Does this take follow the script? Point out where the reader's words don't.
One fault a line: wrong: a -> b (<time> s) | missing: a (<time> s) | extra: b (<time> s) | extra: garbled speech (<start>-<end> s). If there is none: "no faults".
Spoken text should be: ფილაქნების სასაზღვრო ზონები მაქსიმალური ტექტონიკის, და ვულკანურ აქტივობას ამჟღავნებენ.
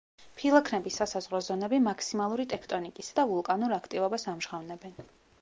no faults